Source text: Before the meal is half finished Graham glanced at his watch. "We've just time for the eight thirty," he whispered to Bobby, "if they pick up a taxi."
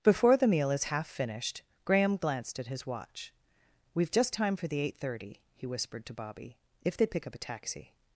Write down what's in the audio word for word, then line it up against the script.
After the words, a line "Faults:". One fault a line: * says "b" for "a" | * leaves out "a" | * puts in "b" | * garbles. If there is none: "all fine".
Before the meal is half finished Graham glanced at his watch. "We've just time for the eight thirty," he whispered to Bobby, "if they pick up a taxi."
Faults:
all fine